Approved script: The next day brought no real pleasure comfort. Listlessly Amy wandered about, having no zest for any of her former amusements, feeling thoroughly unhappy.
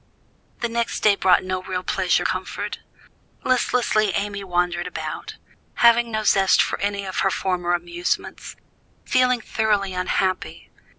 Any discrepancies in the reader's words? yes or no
no